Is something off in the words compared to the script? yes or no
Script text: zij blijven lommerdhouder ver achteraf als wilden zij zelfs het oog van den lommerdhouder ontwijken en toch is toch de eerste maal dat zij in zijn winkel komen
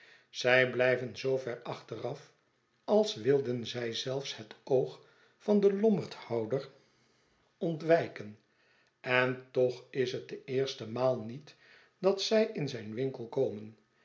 yes